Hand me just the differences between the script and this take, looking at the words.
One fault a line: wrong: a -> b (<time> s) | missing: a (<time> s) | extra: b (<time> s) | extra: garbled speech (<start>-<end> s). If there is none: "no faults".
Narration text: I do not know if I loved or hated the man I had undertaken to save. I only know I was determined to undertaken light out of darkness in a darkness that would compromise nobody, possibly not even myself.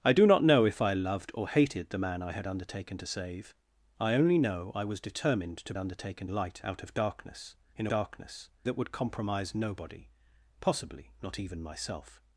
no faults